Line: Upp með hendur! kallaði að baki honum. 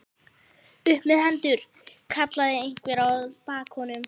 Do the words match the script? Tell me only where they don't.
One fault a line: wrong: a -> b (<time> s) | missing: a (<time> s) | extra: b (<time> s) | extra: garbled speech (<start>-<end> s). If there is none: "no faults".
extra: einhver (2.6 s)